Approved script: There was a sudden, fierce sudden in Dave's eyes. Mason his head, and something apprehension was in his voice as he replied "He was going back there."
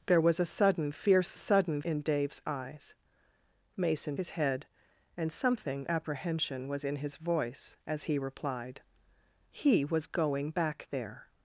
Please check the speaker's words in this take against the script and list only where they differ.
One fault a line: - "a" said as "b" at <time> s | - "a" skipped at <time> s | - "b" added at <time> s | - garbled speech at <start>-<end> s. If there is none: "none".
none